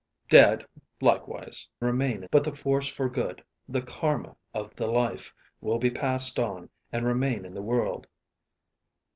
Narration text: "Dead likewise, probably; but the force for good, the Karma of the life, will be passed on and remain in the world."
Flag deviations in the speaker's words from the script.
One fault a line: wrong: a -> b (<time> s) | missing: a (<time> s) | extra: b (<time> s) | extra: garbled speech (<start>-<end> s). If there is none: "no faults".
wrong: probably -> remain (1.8 s)